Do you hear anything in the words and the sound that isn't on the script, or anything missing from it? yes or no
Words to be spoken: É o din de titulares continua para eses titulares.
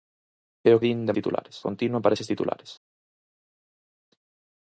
no